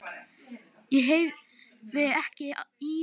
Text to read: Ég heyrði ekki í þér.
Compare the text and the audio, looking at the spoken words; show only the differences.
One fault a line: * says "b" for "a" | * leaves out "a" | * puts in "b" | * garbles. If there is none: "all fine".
all fine